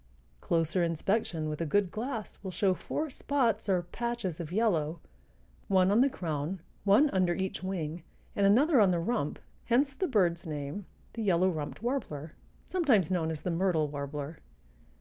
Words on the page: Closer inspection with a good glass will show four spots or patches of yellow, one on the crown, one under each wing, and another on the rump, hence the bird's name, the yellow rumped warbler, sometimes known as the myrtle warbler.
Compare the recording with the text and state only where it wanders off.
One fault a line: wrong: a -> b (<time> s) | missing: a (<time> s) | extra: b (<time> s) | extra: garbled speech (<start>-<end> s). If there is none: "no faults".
no faults